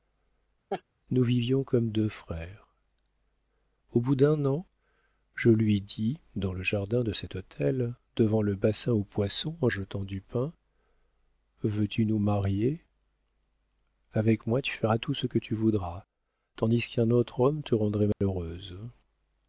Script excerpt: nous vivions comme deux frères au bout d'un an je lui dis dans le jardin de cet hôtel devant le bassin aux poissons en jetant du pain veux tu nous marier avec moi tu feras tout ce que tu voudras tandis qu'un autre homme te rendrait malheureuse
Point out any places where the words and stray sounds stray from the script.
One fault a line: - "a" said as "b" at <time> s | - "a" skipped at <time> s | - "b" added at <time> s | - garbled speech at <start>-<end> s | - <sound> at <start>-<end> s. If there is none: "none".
- laugh at 0.7-0.8 s
- dropout at 18.1-18.2 s